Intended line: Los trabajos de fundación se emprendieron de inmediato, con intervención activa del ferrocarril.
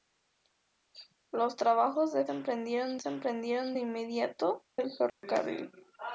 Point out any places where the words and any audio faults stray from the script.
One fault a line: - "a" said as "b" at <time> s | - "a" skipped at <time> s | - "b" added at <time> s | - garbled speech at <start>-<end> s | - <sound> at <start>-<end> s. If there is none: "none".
- "fundación" said as "emprendieron" at 2.3 s
- "con intervención activa" skipped at 4.7 s
- dropout at 5.1-5.2 s